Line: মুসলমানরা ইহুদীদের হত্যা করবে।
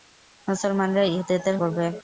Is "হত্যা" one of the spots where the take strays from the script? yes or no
yes